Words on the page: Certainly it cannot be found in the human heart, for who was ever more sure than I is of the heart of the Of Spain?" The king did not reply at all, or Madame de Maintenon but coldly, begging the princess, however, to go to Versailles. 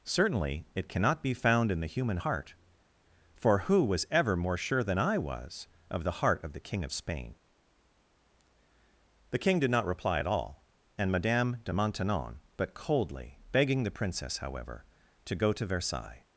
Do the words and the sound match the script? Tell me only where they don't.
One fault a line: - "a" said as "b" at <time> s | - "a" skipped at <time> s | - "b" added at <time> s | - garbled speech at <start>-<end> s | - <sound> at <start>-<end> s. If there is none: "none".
- "is" said as "was" at 5.2 s
- "King" added at 6.6 s
- "or" said as "and" at 11.0 s